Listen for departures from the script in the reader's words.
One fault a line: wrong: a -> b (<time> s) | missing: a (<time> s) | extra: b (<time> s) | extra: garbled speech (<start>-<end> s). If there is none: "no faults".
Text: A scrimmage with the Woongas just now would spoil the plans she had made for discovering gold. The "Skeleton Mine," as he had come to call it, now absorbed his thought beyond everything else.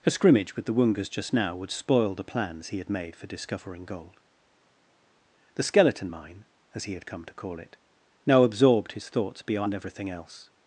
wrong: she -> he (2.7 s)
wrong: thought -> thoughts (9.1 s)